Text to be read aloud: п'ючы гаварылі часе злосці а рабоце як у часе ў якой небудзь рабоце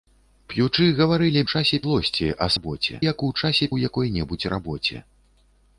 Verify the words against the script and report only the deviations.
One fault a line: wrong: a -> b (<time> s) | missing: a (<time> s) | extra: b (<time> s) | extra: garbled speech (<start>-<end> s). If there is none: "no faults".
no faults